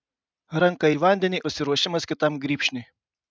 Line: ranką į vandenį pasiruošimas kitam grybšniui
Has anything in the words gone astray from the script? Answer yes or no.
no